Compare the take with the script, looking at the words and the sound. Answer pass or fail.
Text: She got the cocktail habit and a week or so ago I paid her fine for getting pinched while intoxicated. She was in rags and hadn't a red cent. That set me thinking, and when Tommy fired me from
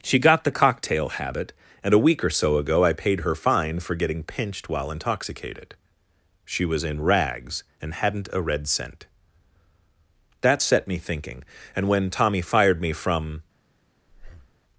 fail